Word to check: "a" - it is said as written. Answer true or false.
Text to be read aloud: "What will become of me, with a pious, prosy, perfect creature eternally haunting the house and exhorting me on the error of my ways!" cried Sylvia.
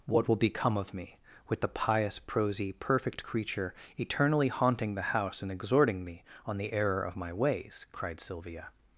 false